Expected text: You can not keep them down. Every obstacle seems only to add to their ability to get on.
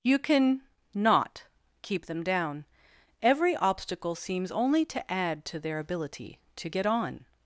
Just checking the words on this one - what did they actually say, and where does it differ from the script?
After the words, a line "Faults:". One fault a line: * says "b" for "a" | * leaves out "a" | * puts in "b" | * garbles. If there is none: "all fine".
You can not keep them down. Every obstacle seems only to add to their ability to get on.
Faults:
all fine